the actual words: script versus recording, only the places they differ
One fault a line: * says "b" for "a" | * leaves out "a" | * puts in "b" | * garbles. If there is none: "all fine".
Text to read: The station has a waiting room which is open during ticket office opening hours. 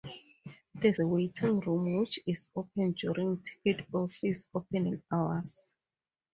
* leaves out "station has"